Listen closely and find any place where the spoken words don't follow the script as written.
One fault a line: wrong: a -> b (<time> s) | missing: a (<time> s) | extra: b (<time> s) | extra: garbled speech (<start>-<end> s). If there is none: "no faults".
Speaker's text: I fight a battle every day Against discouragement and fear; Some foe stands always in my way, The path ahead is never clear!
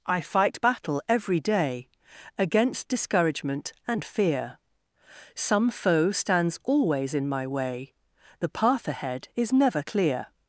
missing: a (0.6 s)